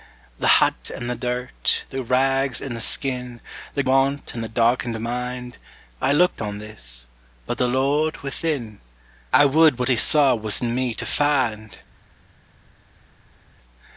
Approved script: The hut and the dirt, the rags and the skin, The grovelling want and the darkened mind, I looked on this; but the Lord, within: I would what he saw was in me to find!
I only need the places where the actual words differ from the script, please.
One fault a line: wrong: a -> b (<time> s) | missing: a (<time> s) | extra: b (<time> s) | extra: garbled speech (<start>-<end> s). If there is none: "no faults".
missing: grovelling (3.8 s)